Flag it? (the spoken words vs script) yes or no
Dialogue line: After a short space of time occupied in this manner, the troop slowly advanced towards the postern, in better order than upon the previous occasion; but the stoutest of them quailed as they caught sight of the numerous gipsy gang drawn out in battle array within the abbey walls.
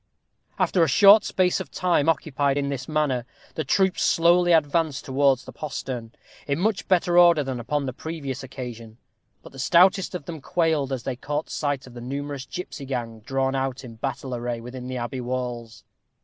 yes